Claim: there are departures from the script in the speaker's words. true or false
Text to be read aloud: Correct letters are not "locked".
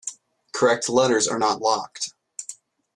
false